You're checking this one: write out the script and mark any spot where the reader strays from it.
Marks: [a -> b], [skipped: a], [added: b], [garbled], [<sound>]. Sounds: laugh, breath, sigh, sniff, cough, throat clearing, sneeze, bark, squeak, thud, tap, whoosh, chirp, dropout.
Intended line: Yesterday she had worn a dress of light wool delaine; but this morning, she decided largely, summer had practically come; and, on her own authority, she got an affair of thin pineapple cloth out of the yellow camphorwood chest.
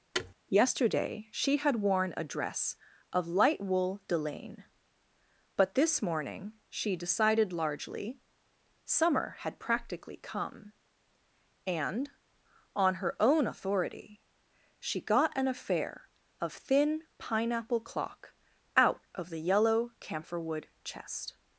[thud] Yesterday she had worn a dress of light wool delaine; but this morning, she decided largely, summer had practically come; and, on her own authority, she got an affair of thin pineapple [cloth -> clock] out of the yellow camphorwood chest.